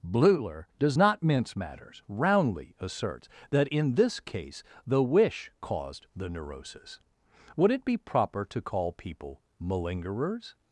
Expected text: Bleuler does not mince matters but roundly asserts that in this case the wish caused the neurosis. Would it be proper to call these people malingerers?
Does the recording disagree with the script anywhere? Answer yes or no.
yes